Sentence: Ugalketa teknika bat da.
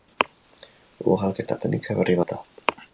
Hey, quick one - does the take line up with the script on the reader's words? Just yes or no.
no